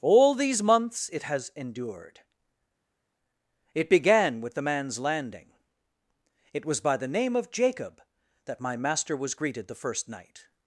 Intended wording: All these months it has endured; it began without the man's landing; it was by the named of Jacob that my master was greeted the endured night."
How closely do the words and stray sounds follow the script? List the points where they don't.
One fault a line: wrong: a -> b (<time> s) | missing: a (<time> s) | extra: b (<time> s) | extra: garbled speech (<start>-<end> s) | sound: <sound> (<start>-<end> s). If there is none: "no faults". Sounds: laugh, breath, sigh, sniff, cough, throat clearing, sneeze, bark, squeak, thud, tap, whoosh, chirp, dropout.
wrong: without -> with (4.4 s)
wrong: named -> name (7.1 s)
wrong: endured -> first (9.8 s)